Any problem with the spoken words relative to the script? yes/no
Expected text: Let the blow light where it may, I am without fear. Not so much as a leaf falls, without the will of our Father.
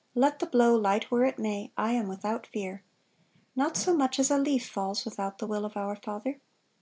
no